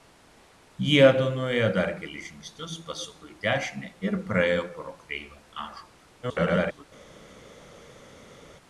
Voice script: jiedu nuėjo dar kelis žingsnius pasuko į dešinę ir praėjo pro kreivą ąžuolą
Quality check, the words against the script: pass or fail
fail